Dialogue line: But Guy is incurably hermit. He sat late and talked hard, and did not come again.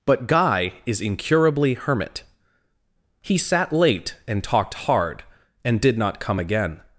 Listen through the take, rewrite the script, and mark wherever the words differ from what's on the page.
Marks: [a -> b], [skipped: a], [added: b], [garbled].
But Guy is incurably hermit. He sat late and talked hard, and did not come again.